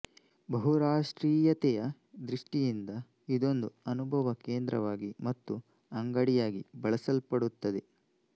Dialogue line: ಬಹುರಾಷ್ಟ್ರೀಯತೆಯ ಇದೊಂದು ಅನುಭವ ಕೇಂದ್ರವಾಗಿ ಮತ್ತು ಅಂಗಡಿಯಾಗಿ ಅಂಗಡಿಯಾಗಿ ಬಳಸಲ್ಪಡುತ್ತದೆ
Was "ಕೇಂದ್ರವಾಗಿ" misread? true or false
false